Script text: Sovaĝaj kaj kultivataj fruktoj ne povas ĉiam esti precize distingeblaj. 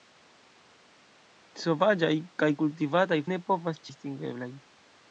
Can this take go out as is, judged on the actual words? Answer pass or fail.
fail